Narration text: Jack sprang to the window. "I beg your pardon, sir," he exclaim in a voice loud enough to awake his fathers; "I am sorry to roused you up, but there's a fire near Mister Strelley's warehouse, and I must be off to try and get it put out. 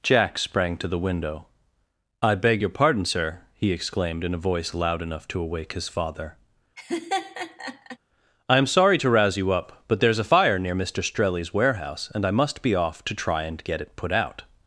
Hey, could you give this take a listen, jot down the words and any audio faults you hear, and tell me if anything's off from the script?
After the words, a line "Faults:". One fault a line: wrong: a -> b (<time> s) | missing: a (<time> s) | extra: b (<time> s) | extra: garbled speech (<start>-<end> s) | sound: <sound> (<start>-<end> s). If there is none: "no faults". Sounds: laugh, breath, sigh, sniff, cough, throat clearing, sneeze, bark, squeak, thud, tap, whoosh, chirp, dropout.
Jack sprang to the window. "I beg your pardon, sir," he exclaimed in a voice loud enough to awake his father; "I am sorry to rouse you up, but there's a fire near Mister Strelley's warehouse, and I must be off to try and get it put out.
Faults:
wrong: exclaim -> exclaimed (3.7 s)
wrong: fathers -> father (5.9 s)
sound: laugh (6.8-8.0 s)
wrong: roused -> rouse (9.1 s)